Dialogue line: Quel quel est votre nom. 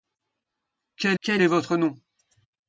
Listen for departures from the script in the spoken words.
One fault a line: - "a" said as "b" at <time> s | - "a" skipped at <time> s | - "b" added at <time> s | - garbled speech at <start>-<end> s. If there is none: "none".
none